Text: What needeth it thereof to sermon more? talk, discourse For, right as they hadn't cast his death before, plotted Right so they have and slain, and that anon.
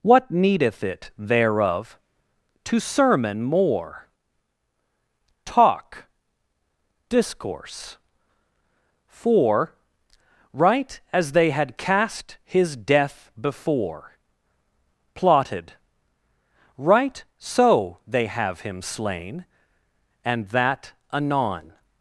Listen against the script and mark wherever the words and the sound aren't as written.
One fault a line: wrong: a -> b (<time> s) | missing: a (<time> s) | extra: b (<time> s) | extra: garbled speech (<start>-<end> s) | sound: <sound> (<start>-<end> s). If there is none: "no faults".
wrong: hadn't -> had (11.5 s)
wrong: and -> him (18.6 s)